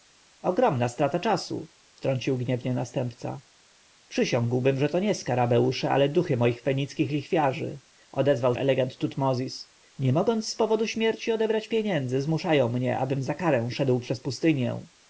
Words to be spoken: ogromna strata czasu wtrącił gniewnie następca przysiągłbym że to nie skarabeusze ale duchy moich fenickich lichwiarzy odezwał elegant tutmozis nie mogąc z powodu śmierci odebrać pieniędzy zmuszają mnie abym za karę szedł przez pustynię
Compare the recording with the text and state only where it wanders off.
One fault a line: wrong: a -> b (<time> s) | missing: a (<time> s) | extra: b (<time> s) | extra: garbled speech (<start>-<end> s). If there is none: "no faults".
no faults